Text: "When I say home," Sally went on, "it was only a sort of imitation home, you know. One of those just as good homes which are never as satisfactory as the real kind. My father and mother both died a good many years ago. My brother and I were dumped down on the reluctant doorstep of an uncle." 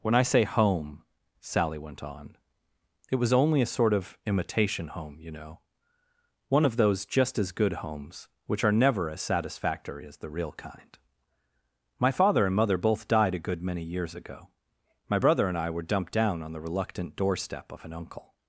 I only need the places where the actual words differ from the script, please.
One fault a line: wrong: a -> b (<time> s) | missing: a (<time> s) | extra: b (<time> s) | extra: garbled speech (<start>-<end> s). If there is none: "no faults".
no faults